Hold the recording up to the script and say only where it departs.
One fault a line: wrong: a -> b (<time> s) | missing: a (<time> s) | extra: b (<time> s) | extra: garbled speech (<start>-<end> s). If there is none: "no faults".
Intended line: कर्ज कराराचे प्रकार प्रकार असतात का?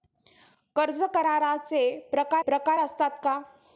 no faults